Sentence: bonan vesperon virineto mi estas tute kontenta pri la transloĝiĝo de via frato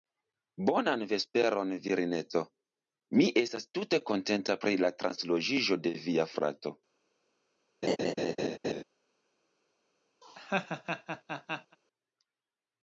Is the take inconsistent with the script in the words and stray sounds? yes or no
yes